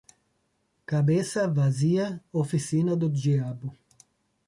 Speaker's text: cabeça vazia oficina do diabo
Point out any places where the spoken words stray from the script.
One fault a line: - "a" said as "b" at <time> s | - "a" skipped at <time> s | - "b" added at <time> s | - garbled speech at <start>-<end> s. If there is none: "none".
none